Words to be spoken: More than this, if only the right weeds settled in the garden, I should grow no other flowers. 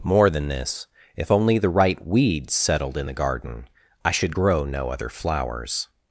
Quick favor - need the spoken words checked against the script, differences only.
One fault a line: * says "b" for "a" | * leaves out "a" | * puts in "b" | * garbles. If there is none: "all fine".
all fine